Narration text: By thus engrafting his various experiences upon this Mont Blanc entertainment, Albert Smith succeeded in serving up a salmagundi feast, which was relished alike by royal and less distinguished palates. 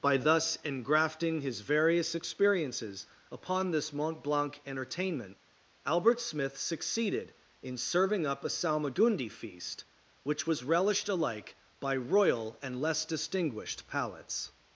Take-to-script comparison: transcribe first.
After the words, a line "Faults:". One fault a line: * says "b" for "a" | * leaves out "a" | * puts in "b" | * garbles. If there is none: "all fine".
By thus engrafting his various experiences upon this Mont Blanc entertainment, Albert Smith succeeded in serving up a salmagundi feast, which was relished alike by royal and less distinguished palates.
Faults:
all fine